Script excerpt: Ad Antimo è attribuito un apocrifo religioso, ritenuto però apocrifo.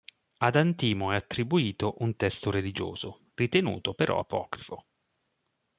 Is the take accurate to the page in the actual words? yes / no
no